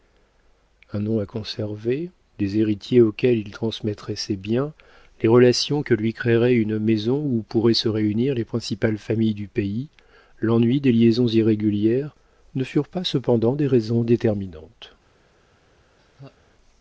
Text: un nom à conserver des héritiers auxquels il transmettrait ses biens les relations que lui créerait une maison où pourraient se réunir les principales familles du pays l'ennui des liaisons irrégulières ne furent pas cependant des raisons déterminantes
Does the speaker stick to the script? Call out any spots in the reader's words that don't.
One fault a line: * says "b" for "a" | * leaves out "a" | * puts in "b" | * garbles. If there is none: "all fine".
all fine